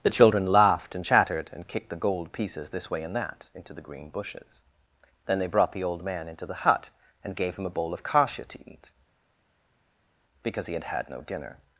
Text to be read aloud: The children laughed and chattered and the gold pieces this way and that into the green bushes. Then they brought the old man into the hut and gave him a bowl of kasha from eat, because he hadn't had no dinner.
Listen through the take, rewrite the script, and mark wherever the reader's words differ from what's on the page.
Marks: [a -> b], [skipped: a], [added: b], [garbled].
The children laughed and chattered and [added: kicked] the gold pieces this way and that into the green bushes. Then they brought the old man into the hut and gave him a bowl of kasha [from -> to] eat, because he [hadn't -> had] had no dinner.